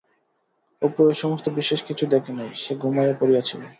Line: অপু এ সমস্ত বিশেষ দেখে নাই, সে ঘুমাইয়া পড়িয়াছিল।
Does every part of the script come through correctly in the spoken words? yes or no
no